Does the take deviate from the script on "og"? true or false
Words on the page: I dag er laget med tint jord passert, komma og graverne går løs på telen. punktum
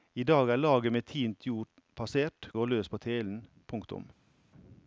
true